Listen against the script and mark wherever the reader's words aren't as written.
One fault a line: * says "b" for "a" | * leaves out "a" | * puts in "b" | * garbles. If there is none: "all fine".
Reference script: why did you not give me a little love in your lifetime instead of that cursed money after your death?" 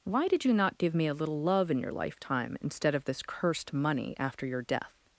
* says "this" for "that"